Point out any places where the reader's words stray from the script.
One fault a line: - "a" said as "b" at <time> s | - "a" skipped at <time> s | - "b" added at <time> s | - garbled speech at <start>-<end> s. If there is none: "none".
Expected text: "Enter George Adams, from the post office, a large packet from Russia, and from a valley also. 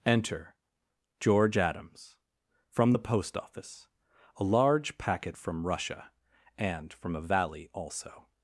none